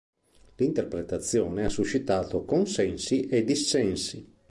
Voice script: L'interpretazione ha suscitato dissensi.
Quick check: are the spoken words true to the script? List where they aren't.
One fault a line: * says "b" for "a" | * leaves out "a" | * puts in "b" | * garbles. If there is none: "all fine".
* puts in "consensi e"